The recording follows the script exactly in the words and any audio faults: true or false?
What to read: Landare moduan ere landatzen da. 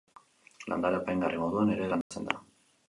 false